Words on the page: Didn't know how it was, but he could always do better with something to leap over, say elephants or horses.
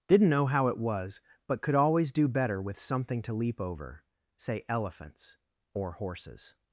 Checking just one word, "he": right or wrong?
wrong